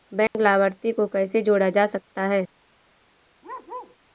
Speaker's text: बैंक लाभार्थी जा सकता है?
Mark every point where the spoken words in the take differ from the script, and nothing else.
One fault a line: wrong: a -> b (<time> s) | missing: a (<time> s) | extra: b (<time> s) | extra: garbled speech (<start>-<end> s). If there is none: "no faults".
extra: को कैसे जोड़ा (0.9 s)